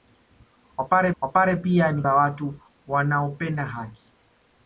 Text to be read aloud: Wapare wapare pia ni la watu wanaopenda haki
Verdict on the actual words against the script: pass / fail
pass